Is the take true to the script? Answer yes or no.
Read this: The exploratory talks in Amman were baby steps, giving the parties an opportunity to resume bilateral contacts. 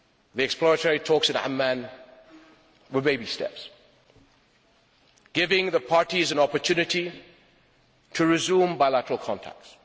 yes